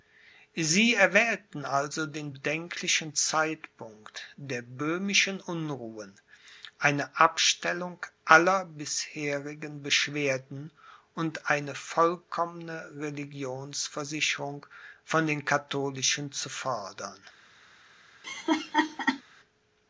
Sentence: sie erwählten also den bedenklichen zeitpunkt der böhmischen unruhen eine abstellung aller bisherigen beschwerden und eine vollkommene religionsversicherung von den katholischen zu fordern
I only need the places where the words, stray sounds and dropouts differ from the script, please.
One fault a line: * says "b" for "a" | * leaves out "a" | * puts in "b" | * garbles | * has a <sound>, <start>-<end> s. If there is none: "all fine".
* has a laugh, 18.2-19.2 s